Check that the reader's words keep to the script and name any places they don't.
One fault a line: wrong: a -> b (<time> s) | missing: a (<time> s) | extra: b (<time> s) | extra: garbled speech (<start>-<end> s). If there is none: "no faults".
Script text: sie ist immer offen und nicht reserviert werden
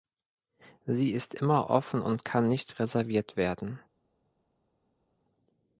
extra: kann (2.2 s)